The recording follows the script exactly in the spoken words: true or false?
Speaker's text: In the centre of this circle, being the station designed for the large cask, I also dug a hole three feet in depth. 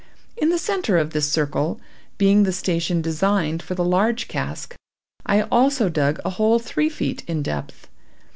true